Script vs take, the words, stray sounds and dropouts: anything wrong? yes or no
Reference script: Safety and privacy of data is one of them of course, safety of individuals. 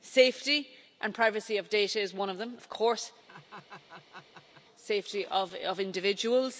yes